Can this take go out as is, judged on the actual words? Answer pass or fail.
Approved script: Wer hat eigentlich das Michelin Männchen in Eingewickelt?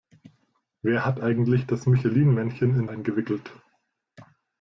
pass